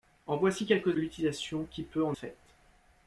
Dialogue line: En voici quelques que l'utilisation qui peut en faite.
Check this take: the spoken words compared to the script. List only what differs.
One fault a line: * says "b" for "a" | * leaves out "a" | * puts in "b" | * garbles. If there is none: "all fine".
all fine